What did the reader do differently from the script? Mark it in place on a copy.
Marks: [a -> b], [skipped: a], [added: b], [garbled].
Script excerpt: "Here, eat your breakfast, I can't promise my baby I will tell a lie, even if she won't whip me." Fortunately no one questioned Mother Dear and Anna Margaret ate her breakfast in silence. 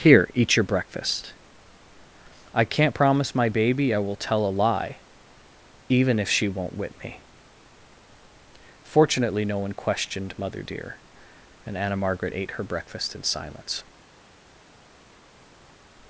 "Here, eat your breakfast, I can't promise my baby I will tell a lie, even if she won't whip me." Fortunately no one questioned Mother Dear and Anna Margaret ate her breakfast in silence.